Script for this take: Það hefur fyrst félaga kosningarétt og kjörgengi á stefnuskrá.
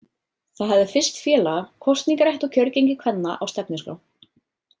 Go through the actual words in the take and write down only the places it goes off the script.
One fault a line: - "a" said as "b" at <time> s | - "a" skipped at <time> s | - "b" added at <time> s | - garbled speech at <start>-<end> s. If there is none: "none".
- "hefur" said as "hafði" at 0.8 s
- "kvenna" added at 3.0 s